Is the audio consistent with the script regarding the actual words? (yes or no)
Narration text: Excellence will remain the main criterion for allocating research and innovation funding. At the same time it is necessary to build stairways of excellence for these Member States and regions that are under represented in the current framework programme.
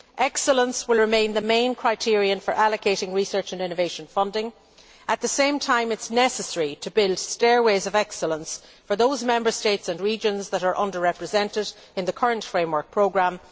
no